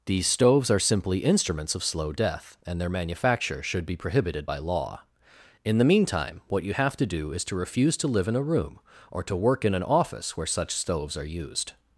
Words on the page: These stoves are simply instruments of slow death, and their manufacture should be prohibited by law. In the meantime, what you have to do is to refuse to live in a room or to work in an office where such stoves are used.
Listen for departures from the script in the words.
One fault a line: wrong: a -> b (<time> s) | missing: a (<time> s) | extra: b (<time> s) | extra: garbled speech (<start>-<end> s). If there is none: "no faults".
no faults